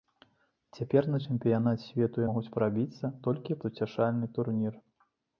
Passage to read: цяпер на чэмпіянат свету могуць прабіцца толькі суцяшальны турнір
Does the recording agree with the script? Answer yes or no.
yes